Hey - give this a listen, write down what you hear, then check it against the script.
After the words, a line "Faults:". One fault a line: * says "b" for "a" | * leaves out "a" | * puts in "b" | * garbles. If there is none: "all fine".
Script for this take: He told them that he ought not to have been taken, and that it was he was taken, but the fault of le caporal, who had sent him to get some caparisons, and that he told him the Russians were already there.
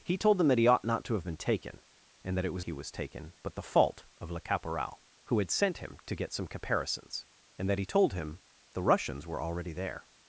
He told them that he ought not to have been taken, and that it was he was taken, but the fault of le caporal, who had sent him to get some caparisons, and that he told him the Russians were already there.
Faults:
all fine